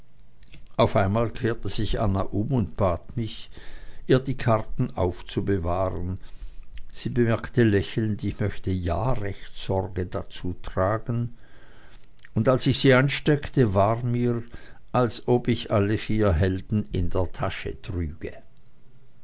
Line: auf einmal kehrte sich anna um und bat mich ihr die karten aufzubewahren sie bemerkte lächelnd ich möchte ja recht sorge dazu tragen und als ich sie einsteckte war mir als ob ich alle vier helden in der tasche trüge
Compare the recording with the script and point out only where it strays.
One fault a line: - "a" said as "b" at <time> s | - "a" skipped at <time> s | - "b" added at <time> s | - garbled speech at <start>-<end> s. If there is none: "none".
none